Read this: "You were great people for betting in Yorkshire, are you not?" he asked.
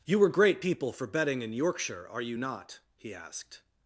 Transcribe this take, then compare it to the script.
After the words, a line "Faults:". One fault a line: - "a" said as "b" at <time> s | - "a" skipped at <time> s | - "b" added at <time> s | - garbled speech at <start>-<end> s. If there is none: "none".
"You were great people for betting in Yorkshire, are you not?" he asked.
Faults:
none